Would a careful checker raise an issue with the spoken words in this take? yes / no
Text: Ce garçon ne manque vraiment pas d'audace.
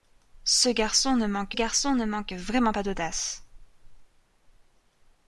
yes